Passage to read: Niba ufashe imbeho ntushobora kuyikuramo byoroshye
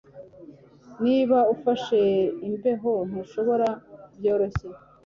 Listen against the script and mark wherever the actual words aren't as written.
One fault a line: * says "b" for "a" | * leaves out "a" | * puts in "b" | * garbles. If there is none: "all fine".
* leaves out "kuyikuramo"